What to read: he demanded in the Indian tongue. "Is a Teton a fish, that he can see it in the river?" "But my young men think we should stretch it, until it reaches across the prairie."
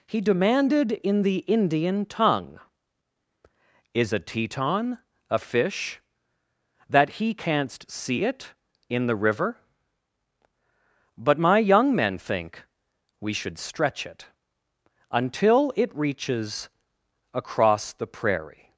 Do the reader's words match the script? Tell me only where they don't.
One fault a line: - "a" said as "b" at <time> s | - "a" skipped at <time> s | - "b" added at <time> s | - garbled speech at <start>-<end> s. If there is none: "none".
- "can" said as "canst" at 7.3 s